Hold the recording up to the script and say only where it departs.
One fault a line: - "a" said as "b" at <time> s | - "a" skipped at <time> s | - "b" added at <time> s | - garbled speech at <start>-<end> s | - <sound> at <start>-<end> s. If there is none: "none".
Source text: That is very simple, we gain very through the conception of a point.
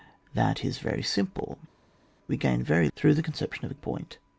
none